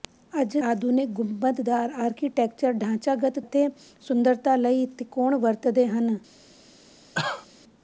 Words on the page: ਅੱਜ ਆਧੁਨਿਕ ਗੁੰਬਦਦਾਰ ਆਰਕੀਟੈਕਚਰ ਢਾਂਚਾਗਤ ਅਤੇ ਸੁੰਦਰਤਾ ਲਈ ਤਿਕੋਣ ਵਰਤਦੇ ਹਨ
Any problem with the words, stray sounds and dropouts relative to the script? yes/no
yes